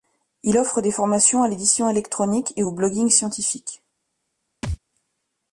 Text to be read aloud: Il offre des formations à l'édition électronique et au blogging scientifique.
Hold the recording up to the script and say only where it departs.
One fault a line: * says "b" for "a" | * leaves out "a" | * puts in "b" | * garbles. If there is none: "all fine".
all fine